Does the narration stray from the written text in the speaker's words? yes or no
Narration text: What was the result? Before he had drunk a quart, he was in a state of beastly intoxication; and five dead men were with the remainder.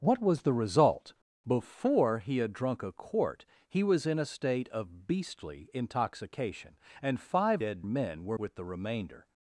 no